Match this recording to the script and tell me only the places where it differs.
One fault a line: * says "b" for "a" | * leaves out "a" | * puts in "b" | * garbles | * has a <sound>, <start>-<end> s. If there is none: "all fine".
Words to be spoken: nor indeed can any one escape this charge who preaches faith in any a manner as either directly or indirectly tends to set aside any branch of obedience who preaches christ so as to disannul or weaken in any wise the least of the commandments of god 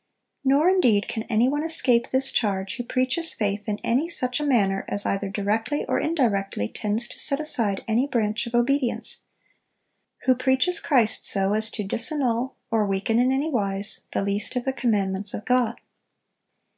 * puts in "such"